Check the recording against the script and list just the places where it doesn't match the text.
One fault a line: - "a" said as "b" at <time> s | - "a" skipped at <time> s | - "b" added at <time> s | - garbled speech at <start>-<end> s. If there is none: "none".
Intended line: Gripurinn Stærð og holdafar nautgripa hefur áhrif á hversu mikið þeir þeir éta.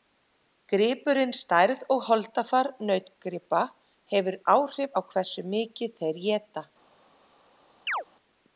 - "þeir" skipped at 6.2 s